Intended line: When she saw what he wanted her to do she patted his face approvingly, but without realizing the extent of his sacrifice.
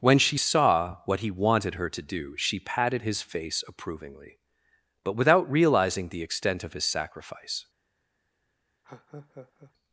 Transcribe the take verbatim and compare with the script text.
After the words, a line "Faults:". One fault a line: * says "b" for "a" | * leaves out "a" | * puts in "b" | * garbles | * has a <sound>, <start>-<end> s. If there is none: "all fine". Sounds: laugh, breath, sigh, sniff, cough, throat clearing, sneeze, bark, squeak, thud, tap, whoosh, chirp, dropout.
When she saw what he wanted her to do she patted his face approvingly, but without realizing the extent of his sacrifice.
Faults:
* has a laugh, 8.8-9.7 s